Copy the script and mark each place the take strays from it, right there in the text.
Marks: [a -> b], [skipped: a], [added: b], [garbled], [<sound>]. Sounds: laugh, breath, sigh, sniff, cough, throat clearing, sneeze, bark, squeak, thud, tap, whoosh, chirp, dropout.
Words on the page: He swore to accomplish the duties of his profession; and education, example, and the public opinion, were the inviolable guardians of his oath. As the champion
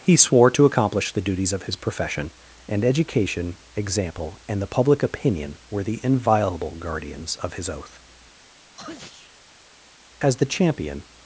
He swore to accomplish the duties of his profession; and education, example, and the public opinion, were the inviolable guardians of his oath. [sneeze] As the champion